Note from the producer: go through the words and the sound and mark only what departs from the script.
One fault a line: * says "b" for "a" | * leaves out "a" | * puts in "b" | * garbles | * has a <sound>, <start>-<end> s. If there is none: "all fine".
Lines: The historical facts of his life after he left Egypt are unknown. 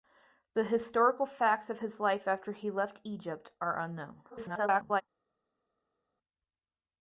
* garbles